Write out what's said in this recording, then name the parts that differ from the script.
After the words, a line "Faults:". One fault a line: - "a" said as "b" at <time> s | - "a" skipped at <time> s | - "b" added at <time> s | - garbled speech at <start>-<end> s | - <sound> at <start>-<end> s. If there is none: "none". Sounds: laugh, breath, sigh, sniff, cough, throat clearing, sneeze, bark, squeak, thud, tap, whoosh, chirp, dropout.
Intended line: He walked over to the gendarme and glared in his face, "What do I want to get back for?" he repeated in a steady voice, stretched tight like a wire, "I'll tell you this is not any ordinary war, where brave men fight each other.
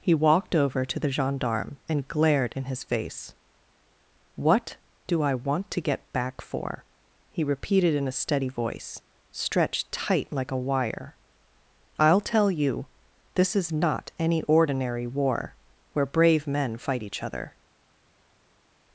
He walked over to the gendarme and glared in his face, "What do I want to get back for?" he repeated in a steady voice, stretched tight like a wire, "I'll tell you this is not any ordinary war, where brave men fight each other.
Faults:
none